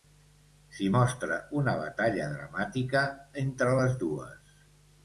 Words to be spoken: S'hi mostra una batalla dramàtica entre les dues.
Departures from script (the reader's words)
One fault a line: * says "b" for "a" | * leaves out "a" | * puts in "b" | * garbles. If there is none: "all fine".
all fine